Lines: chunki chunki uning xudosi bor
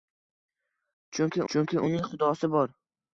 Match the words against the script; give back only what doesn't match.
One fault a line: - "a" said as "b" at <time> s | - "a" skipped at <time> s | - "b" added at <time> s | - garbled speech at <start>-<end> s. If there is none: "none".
none